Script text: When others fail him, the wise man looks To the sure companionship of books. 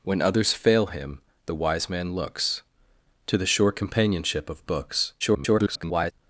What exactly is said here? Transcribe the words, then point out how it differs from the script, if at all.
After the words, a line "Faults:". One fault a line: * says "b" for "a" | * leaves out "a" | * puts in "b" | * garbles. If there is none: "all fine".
When others fail him, the wise man looks To the sure companionship of books. [garbled]
Faults:
* garbles